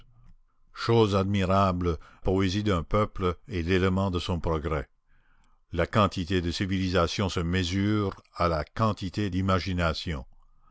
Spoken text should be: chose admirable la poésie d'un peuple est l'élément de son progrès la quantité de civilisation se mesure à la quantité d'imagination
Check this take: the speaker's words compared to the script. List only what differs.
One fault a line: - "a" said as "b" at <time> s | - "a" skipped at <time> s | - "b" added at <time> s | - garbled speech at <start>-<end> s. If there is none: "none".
- "la" skipped at 2.0 s